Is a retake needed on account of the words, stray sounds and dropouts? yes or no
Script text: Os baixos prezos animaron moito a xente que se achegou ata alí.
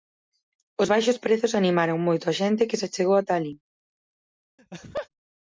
yes